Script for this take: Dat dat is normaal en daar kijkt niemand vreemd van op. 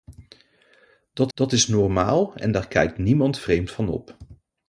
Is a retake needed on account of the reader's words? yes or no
no